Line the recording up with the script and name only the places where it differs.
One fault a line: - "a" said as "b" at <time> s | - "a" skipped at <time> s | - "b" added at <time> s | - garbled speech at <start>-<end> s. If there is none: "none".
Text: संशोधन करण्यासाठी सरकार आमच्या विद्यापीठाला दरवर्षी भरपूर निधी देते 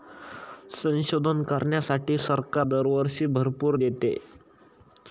- "आमच्या विद्यापीठाला" skipped at 2.7 s
- "निधी" skipped at 3.8 s